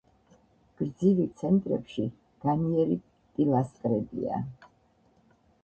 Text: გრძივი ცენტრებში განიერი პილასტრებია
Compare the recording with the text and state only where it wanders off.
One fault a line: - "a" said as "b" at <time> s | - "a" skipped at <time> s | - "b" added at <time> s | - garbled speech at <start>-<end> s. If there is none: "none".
none